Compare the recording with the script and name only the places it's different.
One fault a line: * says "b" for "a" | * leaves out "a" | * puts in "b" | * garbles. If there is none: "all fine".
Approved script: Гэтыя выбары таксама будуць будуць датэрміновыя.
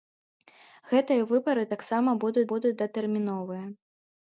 all fine